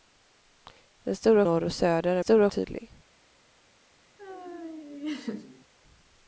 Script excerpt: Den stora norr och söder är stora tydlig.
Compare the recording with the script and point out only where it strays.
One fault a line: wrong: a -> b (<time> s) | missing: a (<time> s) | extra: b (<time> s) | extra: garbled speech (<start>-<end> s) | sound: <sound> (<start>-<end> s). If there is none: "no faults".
sound: laugh (4.2-5.7 s)